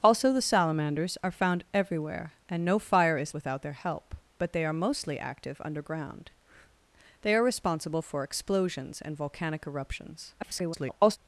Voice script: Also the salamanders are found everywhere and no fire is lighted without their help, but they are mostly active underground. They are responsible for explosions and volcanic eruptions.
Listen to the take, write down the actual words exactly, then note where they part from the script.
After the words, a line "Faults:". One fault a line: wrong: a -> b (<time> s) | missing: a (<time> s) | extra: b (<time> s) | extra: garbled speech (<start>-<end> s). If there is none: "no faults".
Also the salamanders are found everywhere and no fire is without their help, but they are mostly active underground. They are responsible for explosions and volcanic eruptions. [garbled]
Faults:
missing: lighted (3.4 s)
extra: garbled speech (10.4-11.2 s)